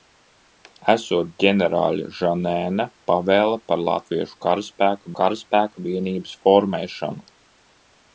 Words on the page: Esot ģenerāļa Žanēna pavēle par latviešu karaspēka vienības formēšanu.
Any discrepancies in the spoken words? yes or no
yes